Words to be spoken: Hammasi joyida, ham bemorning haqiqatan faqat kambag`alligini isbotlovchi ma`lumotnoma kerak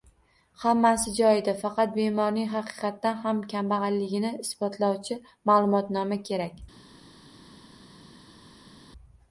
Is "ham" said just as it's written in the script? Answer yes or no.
no